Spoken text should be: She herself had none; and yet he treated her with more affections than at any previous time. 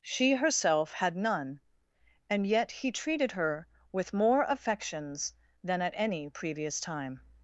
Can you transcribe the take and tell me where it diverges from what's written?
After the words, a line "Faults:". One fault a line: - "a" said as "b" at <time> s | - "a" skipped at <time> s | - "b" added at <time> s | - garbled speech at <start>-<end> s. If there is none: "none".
She herself had none; and yet he treated her with more affections than at any previous time.
Faults:
none